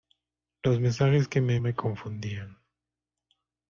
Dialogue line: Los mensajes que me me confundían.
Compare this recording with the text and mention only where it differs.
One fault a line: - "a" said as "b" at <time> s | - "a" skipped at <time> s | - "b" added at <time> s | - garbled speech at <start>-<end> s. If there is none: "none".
none